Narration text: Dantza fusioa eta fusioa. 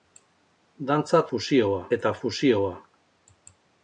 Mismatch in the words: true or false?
false